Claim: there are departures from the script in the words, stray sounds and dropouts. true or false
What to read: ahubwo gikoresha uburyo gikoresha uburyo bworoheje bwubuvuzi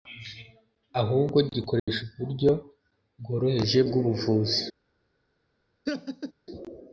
true